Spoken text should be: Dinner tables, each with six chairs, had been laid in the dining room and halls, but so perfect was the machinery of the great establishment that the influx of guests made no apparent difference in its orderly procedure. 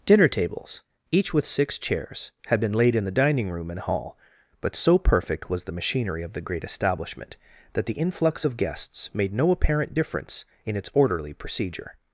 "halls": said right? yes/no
no